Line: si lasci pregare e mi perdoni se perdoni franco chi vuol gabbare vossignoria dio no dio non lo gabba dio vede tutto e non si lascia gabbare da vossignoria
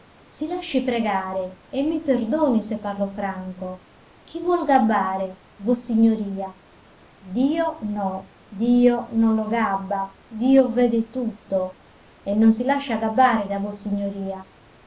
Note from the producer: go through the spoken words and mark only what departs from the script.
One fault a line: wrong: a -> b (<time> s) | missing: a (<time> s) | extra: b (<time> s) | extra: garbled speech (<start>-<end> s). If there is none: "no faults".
wrong: perdoni -> parlo (2.8 s)